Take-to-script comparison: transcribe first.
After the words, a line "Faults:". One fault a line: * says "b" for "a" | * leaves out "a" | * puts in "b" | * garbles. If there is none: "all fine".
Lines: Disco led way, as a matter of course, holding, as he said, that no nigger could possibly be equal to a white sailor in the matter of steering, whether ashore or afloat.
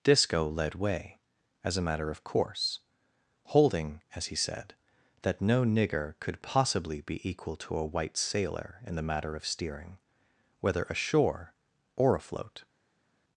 Disco led way, as a matter of course, holding, as he said, that no nigger could possibly be equal to a white sailor in the matter of steering, whether ashore or afloat.
Faults:
all fine